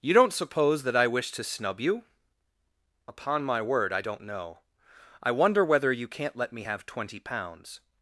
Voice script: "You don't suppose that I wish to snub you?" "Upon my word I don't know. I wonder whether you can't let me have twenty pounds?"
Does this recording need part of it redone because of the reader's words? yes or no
no